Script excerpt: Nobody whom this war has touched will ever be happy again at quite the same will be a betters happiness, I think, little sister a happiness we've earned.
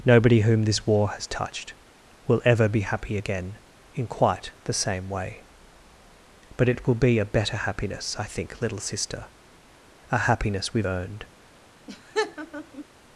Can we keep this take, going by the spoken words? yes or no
no